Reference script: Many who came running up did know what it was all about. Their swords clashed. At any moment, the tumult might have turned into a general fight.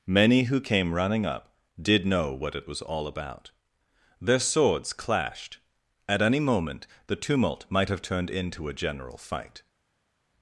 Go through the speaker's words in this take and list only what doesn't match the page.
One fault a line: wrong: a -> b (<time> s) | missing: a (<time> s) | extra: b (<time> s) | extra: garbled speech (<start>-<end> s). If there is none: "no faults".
no faults